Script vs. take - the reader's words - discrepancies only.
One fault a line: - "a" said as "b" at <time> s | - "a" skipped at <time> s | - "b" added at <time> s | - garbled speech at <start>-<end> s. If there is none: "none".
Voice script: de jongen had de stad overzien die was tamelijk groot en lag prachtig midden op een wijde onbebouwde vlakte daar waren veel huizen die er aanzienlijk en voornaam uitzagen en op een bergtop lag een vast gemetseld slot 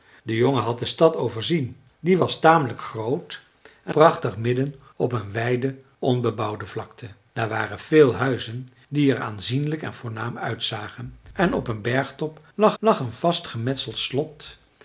- "lag" skipped at 4.0 s
- "lag" added at 12.8 s